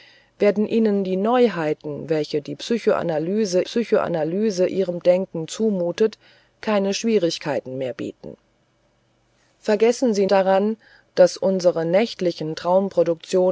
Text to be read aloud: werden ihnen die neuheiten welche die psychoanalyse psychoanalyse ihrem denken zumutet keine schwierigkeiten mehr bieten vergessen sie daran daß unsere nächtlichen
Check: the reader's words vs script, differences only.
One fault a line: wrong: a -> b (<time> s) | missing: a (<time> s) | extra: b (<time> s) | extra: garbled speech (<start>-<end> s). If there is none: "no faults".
no faults